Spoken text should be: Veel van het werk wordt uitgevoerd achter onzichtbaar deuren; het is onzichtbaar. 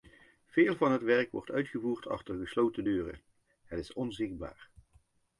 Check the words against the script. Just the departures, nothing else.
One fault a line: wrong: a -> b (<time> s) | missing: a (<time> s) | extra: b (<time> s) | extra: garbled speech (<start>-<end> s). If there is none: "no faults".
wrong: onzichtbaar -> gesloten (2.4 s)